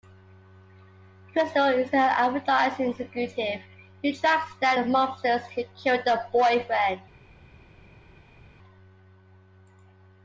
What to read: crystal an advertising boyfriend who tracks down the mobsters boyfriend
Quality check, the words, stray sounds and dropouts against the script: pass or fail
fail